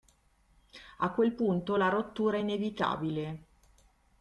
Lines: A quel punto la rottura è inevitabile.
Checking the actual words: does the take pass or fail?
pass